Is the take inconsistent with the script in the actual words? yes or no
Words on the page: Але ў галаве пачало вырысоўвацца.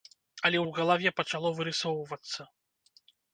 no